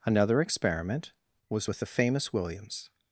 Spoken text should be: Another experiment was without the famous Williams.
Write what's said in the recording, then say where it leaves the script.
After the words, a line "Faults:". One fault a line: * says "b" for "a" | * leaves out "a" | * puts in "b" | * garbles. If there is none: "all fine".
Another experiment was with the famous Williams.
Faults:
* says "with" for "without"